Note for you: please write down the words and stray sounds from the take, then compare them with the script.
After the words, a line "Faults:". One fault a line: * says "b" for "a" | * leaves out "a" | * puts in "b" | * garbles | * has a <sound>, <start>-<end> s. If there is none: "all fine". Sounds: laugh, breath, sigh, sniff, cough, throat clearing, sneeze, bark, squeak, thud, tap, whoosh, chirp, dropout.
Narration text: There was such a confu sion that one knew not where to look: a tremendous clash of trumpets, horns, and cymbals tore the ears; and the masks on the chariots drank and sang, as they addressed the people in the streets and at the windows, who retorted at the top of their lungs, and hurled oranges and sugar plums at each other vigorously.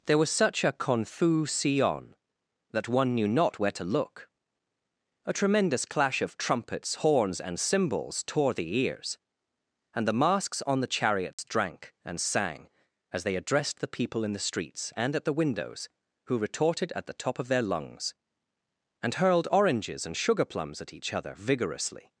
There was such a confu sion that one knew not where to look: a tremendous clash of trumpets, horns, and cymbals tore the ears; and the masks on the chariots drank and sang, as they addressed the people in the streets and at the windows, who retorted at the top of their lungs, and hurled oranges and sugar plums at each other vigorously.
Faults:
* has a dropout, 11.3-11.4 s